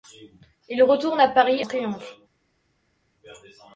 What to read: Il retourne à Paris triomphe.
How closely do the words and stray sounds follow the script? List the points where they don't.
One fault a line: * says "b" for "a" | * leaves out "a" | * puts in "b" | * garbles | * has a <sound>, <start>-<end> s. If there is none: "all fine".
all fine